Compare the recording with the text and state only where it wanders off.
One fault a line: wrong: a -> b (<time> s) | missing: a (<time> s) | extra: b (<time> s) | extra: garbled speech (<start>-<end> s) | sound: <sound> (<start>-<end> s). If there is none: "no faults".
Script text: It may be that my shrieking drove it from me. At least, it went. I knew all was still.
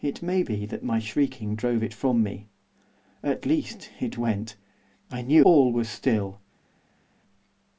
no faults